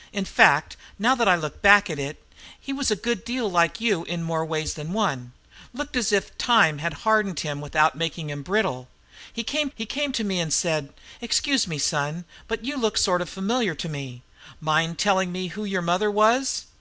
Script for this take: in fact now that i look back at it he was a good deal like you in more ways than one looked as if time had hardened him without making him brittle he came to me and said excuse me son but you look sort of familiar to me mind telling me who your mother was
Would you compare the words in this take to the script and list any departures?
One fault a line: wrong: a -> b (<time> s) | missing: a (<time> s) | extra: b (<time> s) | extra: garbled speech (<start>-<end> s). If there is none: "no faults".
extra: he came (9.7 s)